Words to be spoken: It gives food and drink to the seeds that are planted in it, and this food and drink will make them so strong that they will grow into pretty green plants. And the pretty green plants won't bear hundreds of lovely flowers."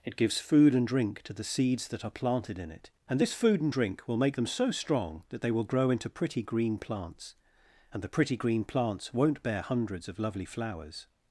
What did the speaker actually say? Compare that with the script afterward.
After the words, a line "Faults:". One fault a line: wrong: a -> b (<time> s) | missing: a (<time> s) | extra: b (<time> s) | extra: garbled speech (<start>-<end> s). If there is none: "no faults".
It gives food and drink to the seeds that are planted in it, and this food and drink will make them so strong that they will grow into pretty green plants. And the pretty green plants won't bear hundreds of lovely flowers."
Faults:
no faults